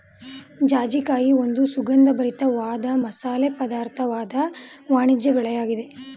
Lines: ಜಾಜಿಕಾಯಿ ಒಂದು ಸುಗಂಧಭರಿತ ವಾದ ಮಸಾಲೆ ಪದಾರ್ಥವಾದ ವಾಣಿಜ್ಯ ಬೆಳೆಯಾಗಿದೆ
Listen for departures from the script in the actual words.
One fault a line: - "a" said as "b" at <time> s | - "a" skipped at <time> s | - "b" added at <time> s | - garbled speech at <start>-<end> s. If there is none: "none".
none